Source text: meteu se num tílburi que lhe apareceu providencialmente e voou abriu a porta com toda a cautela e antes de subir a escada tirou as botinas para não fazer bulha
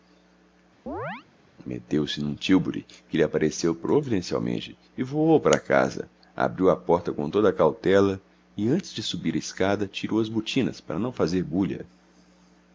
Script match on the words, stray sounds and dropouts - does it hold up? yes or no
no